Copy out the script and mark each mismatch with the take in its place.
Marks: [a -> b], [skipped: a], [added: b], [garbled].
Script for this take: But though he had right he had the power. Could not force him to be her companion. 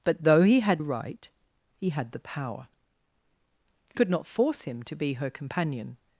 But though he had right he had the power. Could not force him to be her companion.